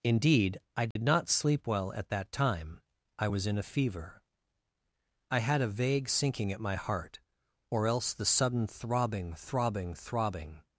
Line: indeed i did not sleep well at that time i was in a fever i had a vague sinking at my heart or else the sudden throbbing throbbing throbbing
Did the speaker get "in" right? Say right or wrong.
right